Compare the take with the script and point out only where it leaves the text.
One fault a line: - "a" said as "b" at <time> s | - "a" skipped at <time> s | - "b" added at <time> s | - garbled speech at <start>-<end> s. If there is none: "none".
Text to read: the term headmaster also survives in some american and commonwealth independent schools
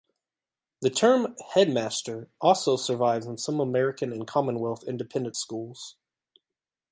none